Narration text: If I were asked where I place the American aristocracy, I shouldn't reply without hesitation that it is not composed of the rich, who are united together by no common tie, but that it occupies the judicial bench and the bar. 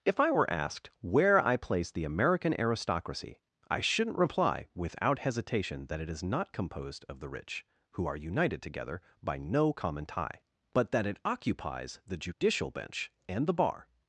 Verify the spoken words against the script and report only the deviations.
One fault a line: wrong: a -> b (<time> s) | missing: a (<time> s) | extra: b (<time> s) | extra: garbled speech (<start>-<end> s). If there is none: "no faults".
no faults